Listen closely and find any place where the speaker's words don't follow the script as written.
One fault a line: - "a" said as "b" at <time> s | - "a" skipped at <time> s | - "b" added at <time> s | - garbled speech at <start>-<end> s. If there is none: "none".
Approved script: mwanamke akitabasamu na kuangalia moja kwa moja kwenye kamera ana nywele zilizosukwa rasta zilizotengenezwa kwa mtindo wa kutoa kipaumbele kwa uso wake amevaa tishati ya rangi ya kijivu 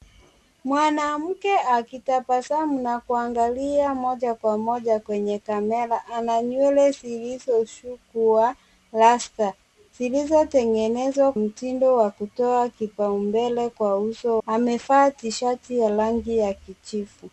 - "kwa" skipped at 11.3 s
- "wake" skipped at 14.4 s